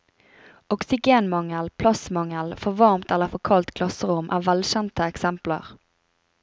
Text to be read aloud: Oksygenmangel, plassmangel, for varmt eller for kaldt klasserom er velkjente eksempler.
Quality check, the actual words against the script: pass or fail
pass